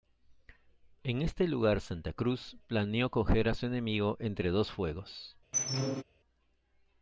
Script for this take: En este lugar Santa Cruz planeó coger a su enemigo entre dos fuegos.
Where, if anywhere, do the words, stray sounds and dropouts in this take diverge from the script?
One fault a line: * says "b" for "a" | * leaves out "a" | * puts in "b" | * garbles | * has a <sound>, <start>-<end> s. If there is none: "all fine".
* has a squeak, 5.5-6.0 s